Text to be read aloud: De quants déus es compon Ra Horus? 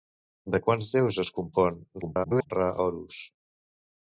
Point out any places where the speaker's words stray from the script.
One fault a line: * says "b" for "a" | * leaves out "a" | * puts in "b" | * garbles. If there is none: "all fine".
* garbles